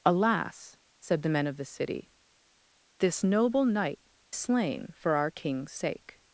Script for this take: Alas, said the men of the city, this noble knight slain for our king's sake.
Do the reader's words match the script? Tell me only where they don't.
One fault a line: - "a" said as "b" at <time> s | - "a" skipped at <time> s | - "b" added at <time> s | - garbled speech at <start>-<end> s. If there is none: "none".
none